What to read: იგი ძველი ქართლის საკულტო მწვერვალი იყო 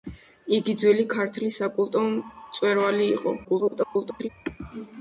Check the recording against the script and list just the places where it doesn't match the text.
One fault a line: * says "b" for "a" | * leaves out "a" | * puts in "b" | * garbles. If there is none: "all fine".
* garbles